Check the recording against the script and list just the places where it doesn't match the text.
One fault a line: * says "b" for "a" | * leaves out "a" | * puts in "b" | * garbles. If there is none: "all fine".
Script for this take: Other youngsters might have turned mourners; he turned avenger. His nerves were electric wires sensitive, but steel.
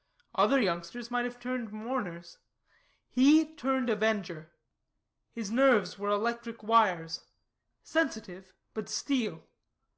all fine